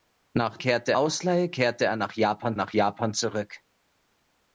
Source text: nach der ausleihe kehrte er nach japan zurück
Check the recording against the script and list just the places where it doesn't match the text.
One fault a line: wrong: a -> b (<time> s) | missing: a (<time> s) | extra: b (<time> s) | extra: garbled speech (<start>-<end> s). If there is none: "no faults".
wrong: der -> kehrte (0.6 s)
extra: nach japan (2.5 s)